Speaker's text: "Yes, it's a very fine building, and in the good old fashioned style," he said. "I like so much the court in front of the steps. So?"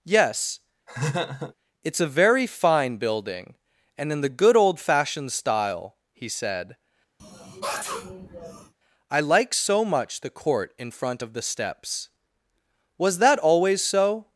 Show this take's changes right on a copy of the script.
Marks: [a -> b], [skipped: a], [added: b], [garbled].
"Yes, it's a very fine building, and in the good old fashioned style," he said. "I like so much the court in front of the steps. [added: Was that always] So?"